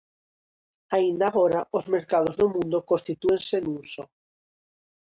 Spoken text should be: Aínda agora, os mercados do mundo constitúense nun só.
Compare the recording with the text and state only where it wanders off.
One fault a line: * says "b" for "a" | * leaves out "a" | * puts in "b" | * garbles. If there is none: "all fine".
all fine